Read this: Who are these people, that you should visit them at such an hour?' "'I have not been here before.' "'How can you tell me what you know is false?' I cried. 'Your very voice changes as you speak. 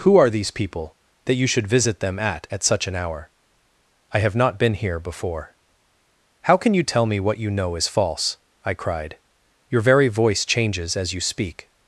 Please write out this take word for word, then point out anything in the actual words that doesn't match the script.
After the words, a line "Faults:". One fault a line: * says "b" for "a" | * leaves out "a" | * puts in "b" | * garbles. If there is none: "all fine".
Who are these people, that you should visit them at at such an hour?' "'I have not been here before.' "'How can you tell me what you know is false?' I cried. 'Your very voice changes as you speak.
Faults:
* puts in "at"